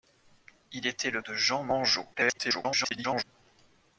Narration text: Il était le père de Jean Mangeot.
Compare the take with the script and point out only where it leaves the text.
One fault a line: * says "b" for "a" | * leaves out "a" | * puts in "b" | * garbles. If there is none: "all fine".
* leaves out "père"
* garbles